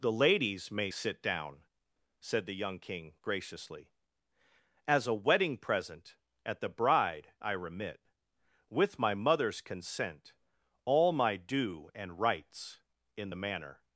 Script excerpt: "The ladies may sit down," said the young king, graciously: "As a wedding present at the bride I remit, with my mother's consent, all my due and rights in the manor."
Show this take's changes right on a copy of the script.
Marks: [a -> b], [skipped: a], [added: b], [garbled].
"The ladies may sit down," said the young king, graciously: "As a wedding present at the bride I remit, with my mother's consent, all my due and rights in the manor."